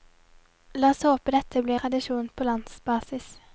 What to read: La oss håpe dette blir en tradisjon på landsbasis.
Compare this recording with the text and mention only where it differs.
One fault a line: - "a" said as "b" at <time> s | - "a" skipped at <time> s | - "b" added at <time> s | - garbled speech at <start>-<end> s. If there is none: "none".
- "en" skipped at 1.8 s